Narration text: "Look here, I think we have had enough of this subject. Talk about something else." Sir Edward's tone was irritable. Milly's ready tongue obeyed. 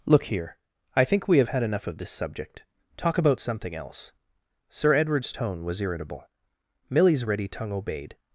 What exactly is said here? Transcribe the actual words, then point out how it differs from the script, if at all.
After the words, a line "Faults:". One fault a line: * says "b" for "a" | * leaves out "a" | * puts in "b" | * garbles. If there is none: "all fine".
"Look here, I think we have had enough of this subject. Talk about something else." Sir Edward's tone was irritable. Milly's ready tongue obeyed.
Faults:
all fine